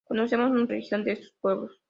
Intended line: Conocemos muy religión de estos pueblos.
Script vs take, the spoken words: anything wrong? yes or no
no